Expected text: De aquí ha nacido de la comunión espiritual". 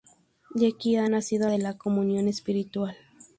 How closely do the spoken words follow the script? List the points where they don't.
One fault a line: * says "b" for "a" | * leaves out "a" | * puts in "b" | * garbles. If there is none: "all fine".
all fine